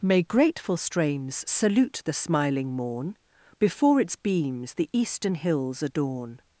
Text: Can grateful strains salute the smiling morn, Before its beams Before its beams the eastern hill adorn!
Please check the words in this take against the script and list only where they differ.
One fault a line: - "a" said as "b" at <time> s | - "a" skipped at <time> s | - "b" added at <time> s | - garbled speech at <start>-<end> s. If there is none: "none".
- "Can" said as "May" at 0.0 s
- "Before its beams" skipped at 4.7 s
- "hill" said as "hills" at 5.3 s